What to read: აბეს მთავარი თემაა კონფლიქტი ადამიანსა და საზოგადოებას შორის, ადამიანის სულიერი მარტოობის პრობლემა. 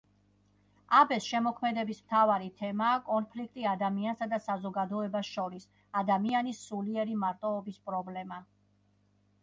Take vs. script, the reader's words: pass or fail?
fail